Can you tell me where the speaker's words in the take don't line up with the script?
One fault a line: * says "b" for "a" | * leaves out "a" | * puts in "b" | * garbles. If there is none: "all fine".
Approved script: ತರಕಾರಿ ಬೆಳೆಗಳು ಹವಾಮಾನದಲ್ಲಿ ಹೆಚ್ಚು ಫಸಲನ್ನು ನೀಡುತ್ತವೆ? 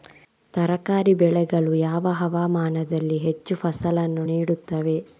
* puts in "ಯಾವ"